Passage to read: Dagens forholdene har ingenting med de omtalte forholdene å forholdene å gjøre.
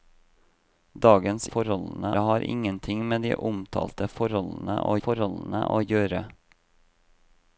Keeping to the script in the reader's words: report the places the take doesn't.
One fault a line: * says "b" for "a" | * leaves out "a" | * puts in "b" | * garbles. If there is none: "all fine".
all fine